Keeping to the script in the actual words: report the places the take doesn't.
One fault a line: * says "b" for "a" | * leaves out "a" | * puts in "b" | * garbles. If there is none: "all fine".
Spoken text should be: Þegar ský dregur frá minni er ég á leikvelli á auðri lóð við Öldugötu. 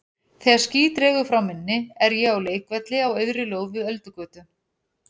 all fine